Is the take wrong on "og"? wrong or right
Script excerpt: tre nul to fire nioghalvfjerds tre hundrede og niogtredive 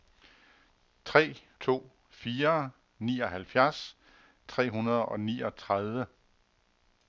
right